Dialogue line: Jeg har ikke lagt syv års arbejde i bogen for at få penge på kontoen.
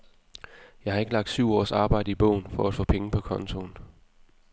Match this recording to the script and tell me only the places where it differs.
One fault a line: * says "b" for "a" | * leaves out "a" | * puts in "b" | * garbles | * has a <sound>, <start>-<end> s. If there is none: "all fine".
all fine